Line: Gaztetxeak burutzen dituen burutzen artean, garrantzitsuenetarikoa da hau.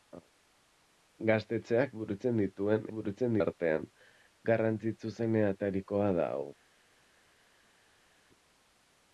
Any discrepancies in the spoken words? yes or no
no